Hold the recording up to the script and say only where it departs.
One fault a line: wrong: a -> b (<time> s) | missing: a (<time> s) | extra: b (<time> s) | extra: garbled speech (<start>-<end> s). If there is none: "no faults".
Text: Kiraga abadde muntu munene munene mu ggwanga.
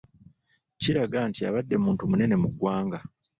extra: nti (1.3 s)
missing: munene (2.4 s)